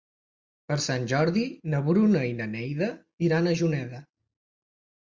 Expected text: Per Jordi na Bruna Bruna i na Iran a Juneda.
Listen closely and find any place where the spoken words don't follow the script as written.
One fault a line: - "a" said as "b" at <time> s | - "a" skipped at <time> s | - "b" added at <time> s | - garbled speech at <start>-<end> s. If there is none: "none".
- "Sant" added at 0.8 s
- "Bruna" skipped at 2.2 s
- "Neida" added at 2.6 s